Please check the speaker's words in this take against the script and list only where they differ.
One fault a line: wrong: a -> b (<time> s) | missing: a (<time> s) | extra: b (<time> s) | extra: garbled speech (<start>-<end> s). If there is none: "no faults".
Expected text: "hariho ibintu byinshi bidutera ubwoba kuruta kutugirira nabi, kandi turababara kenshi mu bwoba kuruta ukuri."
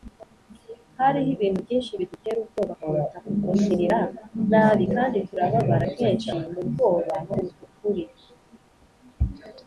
no faults